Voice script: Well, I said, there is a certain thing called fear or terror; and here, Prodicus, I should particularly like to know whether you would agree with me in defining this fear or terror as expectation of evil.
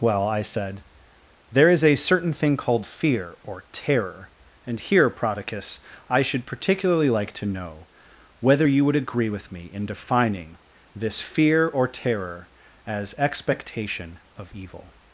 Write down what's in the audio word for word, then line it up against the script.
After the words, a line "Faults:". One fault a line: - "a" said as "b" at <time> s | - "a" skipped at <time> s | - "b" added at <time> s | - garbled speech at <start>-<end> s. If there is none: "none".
Well, I said, there is a certain thing called fear or terror; and here, Prodicus, I should particularly like to know whether you would agree with me in defining this fear or terror as expectation of evil.
Faults:
none